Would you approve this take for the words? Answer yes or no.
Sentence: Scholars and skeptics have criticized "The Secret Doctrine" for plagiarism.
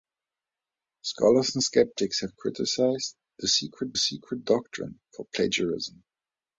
no